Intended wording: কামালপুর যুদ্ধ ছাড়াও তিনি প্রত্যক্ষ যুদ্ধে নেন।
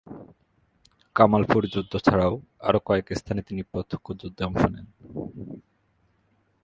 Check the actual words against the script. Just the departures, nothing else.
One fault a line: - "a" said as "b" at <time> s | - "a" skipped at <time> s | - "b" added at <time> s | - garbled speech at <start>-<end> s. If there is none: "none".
- "আরও কয়েক স্থানে" added at 2.6 s
- "অংশ" added at 4.4 s